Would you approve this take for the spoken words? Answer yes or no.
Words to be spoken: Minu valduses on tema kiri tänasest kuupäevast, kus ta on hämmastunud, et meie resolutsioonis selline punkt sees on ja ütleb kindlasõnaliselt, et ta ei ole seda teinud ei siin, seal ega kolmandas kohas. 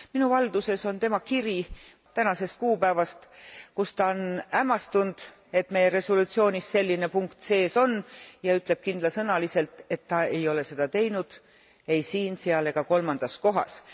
yes